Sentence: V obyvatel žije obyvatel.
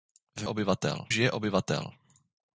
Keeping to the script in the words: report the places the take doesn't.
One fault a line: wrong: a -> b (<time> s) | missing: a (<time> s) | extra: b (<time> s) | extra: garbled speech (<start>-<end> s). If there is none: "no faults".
no faults